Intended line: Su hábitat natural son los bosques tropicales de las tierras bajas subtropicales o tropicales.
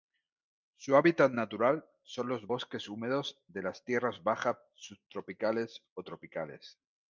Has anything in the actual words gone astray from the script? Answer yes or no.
yes